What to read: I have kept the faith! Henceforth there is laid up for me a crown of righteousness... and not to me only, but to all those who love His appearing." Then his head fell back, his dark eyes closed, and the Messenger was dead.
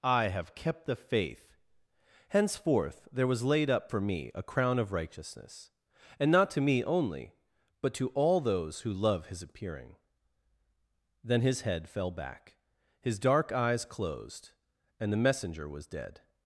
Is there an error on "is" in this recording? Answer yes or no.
yes